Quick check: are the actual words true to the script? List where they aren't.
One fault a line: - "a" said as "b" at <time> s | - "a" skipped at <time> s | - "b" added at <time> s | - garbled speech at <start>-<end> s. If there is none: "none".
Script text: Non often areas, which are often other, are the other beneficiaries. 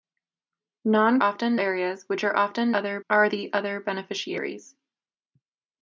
none